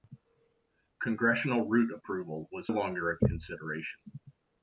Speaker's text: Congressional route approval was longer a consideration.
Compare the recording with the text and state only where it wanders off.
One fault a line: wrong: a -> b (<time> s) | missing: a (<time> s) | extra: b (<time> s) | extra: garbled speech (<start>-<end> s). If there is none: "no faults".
no faults